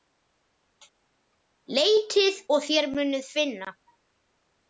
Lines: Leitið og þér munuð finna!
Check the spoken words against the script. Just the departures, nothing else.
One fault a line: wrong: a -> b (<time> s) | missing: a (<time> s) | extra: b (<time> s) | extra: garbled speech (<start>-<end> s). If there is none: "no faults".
no faults